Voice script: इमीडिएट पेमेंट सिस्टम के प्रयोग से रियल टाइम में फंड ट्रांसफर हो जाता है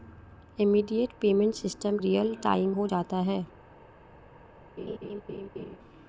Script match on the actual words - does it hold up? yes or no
no